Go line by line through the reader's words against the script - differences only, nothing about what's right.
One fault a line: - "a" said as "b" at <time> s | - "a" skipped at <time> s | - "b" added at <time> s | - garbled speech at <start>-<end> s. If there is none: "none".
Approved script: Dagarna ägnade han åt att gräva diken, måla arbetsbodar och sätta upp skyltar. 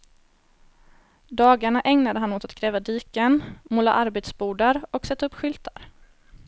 none